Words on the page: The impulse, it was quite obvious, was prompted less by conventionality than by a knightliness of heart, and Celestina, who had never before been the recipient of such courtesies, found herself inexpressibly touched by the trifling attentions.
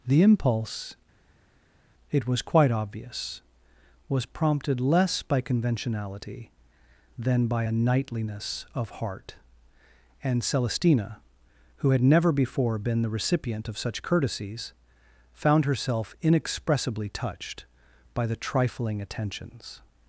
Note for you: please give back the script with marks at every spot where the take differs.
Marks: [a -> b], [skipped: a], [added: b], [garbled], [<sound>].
The impulse, it was quite obvious, was prompted less by conventionality than by a knightliness of heart, and Celestina, who had never before been the recipient of such courtesies, found herself inexpressibly touched by the trifling attentions.